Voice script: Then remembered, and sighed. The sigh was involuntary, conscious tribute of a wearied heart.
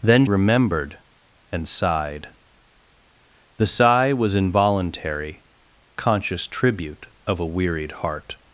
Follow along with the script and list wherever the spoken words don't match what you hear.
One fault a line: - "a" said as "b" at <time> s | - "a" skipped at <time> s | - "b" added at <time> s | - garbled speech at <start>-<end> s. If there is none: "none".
none